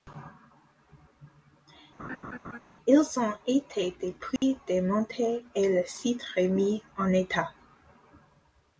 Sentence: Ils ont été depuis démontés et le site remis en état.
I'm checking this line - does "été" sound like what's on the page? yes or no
yes